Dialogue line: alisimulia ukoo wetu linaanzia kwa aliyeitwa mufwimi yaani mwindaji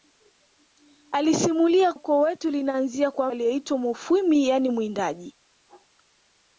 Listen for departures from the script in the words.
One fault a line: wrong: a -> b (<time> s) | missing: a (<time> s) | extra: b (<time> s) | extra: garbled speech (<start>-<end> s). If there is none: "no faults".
no faults